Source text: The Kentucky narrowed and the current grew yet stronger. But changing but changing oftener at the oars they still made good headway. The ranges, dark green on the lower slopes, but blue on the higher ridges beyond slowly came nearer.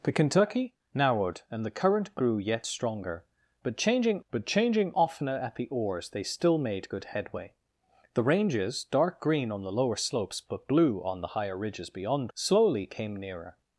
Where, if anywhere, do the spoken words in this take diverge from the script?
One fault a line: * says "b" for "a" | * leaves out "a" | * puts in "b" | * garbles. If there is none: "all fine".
all fine